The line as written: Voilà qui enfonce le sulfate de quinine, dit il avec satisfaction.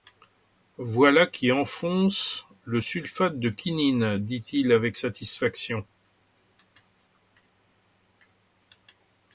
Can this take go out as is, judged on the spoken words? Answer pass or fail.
pass